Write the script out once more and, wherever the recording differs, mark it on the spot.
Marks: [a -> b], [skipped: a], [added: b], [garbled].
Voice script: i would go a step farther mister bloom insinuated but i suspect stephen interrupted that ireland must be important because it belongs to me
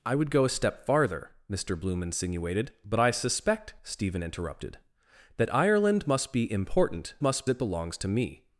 i would go a step farther mister bloom insinuated but i suspect stephen interrupted that ireland must be important [because -> must] it belongs to me